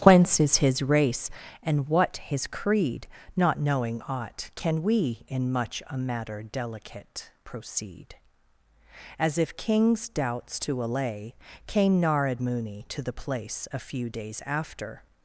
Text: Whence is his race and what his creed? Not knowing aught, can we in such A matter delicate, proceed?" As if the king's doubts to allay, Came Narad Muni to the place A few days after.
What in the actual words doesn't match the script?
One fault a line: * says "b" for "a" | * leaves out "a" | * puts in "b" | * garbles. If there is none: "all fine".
* says "much" for "such"
* leaves out "the"